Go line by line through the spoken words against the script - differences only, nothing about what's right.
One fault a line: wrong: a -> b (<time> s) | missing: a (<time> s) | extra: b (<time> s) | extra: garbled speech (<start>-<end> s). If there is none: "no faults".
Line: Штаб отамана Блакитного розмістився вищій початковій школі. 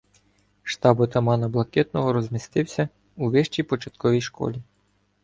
extra: у (3.1 s)